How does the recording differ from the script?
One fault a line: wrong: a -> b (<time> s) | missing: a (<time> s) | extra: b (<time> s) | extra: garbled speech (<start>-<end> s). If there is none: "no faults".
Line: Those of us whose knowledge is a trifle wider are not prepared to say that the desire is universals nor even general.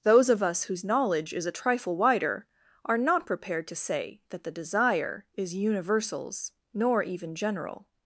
no faults